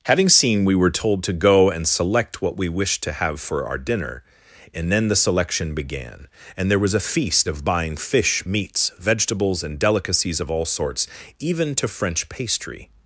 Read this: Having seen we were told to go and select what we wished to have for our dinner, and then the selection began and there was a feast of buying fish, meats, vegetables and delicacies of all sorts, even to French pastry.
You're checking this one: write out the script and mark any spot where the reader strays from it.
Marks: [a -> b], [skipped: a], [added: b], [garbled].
Having seen we were told to go and select what we wished to have for our dinner, and then the selection began and there was a feast of buying fish, meats, vegetables and delicacies of all sorts, even to French pastry.